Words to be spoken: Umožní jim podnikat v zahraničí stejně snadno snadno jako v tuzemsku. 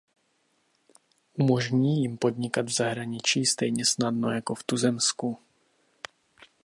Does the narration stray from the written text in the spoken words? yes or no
yes